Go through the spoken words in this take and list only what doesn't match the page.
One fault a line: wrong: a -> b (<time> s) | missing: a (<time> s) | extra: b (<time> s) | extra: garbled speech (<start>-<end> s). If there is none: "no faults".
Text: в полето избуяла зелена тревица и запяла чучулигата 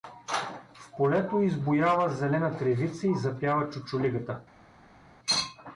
no faults